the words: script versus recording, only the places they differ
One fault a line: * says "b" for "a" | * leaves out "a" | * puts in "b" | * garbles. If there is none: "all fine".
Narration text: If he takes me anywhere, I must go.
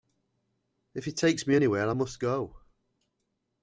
all fine